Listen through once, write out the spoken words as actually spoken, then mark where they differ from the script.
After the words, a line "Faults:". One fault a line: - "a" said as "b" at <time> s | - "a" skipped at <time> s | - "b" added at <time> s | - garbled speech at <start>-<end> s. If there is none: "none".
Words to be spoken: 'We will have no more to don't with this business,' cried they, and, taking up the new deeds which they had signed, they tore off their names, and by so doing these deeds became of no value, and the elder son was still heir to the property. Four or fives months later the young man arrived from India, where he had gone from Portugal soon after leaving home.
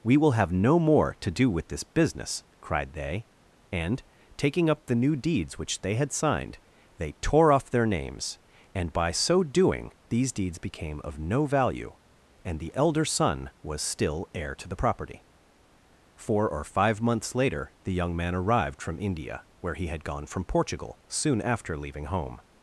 'We will have no more to do with this business,' cried they, and, taking up the new deeds which they had signed, they tore off their names, and by so doing these deeds became of no value, and the elder son was still heir to the property. Four or five months later the young man arrived from India, where he had gone from Portugal soon after leaving home.
Faults:
- "don't" said as "do" at 1.3 s
- "fives" said as "five" at 16.6 s